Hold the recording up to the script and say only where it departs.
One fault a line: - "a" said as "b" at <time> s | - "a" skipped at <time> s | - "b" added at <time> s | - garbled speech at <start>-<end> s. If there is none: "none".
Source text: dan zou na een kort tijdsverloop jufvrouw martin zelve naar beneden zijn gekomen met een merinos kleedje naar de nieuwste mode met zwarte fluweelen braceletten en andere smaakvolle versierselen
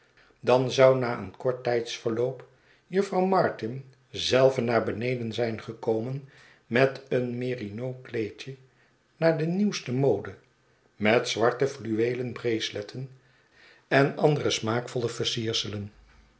none